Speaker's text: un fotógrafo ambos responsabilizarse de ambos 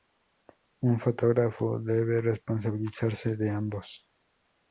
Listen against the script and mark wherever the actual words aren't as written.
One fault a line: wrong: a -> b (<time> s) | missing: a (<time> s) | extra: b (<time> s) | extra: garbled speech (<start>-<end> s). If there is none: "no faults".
wrong: ambos -> debe (1.8 s)